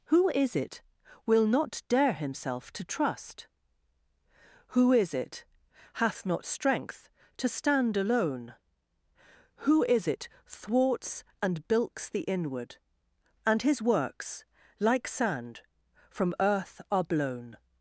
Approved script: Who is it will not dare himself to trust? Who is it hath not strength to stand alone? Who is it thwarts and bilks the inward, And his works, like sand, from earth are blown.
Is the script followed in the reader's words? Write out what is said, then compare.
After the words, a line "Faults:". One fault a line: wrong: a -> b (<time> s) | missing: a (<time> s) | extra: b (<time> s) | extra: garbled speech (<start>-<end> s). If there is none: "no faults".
Who is it will not dare himself to trust? Who is it hath not strength to stand alone? Who is it thwarts and bilks the inward, And his works, like sand, from earth are blown.
Faults:
no faults